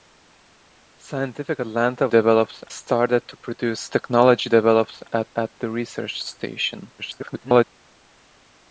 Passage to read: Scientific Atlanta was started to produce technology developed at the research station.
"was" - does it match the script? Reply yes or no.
no